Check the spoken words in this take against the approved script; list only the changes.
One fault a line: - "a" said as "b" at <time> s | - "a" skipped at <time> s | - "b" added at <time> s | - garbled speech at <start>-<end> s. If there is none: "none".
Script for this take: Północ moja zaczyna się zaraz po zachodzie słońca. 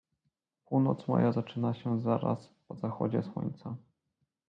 none